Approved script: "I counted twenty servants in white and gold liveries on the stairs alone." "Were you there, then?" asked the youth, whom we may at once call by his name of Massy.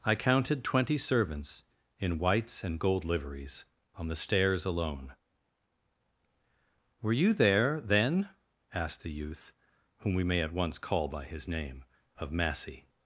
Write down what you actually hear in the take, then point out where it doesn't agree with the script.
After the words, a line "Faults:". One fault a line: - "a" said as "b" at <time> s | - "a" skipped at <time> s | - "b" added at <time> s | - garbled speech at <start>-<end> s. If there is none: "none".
"I counted twenty servants in whites and gold liveries on the stairs alone." "Were you there, then?" asked the youth, whom we may at once call by his name of Massy.
Faults:
- "white" said as "whites" at 2.2 s